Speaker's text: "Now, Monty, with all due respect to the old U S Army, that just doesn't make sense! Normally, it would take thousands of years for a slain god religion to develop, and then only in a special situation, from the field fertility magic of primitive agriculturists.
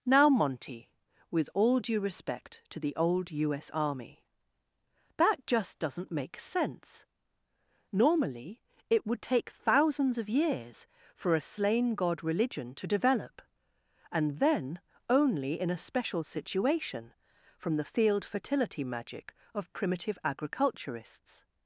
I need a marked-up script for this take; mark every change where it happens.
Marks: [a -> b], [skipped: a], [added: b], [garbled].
"Now, Monty, with all due respect to the old U S Army, that just doesn't make sense! Normally, it would take thousands of years for a slain god religion to develop, and then only in a special situation, from the field fertility magic of primitive agriculturists.